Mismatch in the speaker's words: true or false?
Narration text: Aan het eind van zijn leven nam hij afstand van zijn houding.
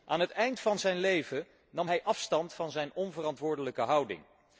true